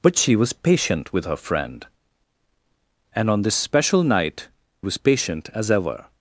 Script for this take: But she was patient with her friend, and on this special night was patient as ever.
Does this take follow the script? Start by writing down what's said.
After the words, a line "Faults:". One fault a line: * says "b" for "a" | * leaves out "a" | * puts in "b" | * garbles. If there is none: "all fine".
But she was patient with her friend, and on this special night was patient as ever.
Faults:
all fine